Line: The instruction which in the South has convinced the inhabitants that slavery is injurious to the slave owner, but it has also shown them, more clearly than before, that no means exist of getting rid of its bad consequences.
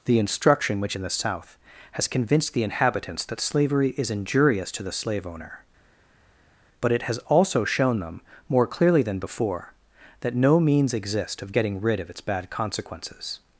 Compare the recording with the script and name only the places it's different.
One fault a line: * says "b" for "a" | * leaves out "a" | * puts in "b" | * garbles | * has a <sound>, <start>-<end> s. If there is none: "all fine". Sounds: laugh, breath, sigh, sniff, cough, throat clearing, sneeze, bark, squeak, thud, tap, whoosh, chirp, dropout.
all fine